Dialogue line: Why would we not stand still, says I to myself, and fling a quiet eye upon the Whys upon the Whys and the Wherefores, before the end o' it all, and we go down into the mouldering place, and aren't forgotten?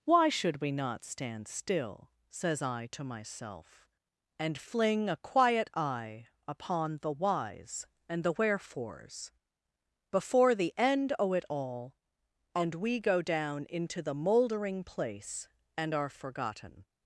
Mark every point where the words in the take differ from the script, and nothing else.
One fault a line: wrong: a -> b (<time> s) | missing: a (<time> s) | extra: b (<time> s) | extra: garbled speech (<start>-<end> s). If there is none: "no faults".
wrong: would -> should (0.3 s)
missing: upon the Whys (7.9 s)
wrong: aren't -> are (15.9 s)